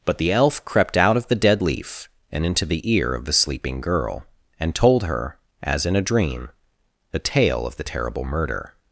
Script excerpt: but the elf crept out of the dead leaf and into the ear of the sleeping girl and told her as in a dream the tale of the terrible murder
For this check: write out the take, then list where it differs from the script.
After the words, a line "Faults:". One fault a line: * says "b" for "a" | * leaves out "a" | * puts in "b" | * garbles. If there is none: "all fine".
but the elf crept out of the dead leaf and into the ear of the sleeping girl and told her as in a dream the tale of the terrible murder
Faults:
all fine